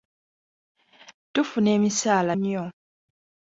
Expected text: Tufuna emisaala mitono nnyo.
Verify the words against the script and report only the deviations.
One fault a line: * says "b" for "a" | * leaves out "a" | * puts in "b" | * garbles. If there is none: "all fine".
* leaves out "mitono"